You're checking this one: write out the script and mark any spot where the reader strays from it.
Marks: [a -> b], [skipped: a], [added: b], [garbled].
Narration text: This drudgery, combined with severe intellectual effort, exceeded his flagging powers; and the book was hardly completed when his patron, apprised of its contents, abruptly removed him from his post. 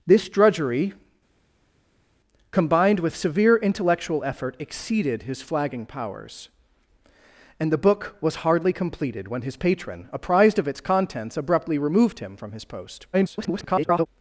This drudgery, combined with severe intellectual effort, exceeded his flagging powers; and the book was hardly completed when his patron, apprised of its contents, abruptly removed him from his post. [garbled]